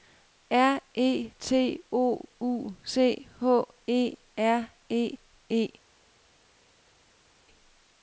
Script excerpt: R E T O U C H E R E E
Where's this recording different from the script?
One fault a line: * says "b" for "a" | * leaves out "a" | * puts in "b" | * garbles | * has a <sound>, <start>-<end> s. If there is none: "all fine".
all fine